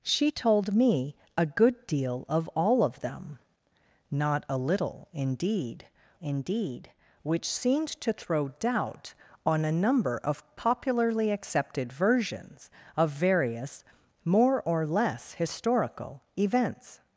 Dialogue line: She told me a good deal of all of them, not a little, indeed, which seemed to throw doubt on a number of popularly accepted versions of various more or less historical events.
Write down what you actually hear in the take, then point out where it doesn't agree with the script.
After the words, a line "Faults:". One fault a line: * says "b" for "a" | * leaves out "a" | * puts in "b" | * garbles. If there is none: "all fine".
She told me a good deal of all of them, not a little, indeed indeed, which seemed to throw doubt on a number of popularly accepted versions of various more or less historical events.
Faults:
* puts in "indeed"